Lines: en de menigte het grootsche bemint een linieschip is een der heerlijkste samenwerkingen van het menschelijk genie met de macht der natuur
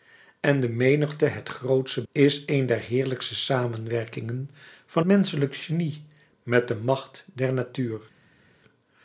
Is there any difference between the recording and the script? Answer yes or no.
yes